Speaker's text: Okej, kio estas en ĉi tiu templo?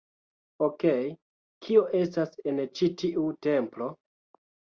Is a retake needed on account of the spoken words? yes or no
no